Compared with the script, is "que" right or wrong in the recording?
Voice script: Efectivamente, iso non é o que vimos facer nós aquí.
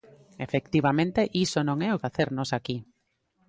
wrong